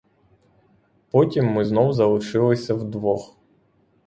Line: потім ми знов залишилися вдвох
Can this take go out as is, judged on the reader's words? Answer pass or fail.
pass